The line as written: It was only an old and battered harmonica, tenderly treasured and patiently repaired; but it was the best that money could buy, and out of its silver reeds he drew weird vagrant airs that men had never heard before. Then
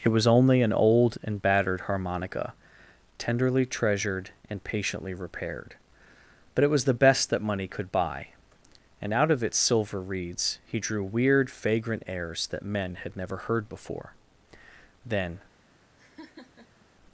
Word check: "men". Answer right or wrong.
right